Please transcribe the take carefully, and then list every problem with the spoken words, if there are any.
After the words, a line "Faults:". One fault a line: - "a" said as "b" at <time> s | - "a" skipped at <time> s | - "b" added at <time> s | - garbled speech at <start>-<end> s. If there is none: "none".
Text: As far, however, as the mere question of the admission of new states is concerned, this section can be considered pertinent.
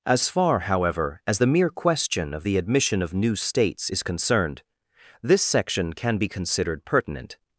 As far, however, as the mere question of the admission of new states is concerned, this section can be considered pertinent.
Faults:
none